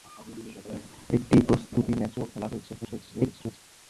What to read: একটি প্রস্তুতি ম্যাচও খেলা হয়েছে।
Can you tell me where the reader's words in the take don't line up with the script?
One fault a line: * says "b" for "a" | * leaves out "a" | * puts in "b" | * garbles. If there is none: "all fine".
* garbles